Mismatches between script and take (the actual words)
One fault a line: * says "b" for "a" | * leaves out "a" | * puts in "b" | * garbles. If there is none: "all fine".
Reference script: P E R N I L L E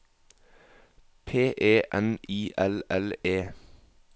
* leaves out "R"